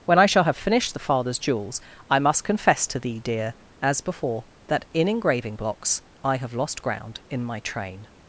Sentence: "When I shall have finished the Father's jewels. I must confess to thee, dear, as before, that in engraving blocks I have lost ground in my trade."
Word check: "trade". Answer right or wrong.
wrong